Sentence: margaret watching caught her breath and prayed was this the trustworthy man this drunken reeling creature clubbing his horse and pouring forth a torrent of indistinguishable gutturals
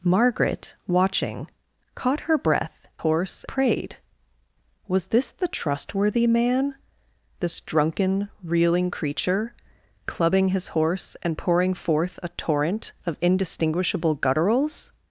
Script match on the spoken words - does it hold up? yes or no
no